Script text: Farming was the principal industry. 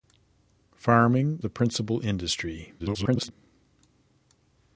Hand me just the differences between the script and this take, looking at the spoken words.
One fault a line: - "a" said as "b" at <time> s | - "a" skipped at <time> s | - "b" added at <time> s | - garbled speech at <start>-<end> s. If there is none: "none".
- "was" skipped at 1.4 s
- garbled speech at 2.8-3.3 s